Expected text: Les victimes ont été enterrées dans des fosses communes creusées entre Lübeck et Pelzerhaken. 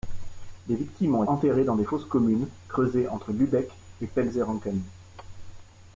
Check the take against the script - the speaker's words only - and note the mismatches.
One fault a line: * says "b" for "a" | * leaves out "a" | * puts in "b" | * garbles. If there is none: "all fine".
* leaves out "été"